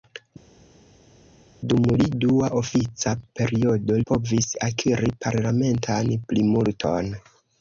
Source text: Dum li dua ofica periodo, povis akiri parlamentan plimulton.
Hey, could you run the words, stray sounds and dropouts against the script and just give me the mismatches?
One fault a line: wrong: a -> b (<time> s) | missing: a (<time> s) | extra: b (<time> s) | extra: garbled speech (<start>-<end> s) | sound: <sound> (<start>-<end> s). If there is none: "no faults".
no faults